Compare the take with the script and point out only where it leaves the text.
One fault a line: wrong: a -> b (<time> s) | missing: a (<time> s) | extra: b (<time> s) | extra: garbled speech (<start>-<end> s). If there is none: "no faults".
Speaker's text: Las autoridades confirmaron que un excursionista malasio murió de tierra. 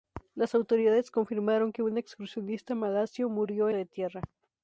no faults